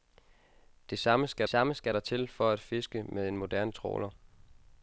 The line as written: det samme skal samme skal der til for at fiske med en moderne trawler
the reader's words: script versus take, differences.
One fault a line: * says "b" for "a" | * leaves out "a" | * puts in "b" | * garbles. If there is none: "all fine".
all fine